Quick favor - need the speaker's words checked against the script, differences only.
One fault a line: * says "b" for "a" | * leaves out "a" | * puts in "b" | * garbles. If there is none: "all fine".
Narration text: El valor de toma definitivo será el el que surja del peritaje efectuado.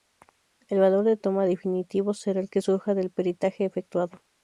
* leaves out "el"